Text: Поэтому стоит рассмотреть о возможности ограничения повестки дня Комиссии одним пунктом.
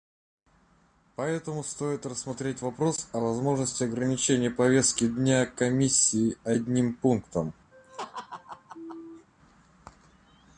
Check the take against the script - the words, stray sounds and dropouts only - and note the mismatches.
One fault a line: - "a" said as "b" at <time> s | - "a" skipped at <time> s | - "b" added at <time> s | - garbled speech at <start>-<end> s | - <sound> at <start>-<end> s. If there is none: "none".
- "вопрос" added at 2.6 s
- laugh at 7.7-9.3 s